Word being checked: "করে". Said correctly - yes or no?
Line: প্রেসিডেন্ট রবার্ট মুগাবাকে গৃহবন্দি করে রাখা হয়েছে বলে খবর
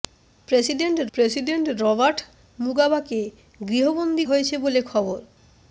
no